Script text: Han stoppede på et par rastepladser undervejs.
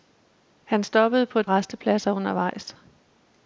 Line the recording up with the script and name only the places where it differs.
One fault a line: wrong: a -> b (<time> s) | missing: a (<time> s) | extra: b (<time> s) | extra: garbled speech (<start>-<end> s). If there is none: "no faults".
missing: par (1.5 s)